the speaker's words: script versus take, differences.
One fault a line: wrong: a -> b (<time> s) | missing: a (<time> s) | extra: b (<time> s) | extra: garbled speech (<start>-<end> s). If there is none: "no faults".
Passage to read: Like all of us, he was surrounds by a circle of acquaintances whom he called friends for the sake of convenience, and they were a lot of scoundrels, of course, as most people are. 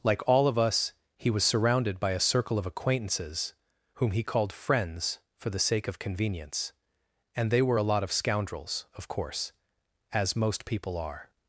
wrong: surrounds -> surrounded (1.4 s)